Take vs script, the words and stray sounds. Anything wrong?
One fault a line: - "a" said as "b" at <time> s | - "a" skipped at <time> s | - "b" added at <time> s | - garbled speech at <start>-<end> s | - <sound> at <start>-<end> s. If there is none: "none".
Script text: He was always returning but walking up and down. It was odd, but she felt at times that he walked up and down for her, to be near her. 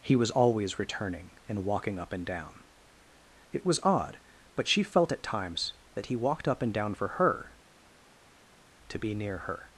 - "but" said as "and" at 1.5 s